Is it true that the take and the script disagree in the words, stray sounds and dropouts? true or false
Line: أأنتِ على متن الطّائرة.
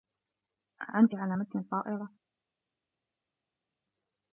false